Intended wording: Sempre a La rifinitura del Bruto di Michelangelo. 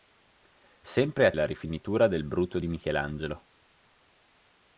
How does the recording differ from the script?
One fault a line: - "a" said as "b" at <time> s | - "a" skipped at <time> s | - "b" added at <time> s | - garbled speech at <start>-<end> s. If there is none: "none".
none